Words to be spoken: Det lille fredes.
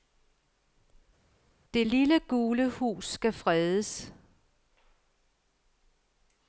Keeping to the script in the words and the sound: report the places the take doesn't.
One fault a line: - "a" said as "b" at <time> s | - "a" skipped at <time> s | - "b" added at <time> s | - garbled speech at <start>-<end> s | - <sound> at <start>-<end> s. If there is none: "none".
- "gule hus skal" added at 2.2 s